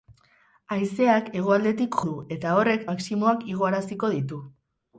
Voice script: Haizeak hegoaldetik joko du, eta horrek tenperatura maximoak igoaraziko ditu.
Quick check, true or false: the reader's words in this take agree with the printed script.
false